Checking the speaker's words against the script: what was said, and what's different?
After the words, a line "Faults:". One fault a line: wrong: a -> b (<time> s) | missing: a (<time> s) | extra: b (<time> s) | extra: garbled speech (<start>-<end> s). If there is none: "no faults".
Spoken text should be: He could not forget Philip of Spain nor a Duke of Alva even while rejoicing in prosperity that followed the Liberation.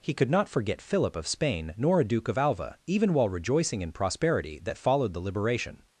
He could not forget Philip of Spain nor a Duke of Alva even while rejoicing in prosperity that followed the Liberation.
Faults:
no faults